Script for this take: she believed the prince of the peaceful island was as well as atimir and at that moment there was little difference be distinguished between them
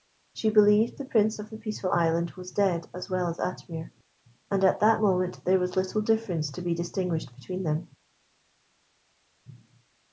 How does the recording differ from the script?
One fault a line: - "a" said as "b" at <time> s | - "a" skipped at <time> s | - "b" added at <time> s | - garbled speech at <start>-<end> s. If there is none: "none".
- "dead" added at 2.5 s
- "to" added at 6.5 s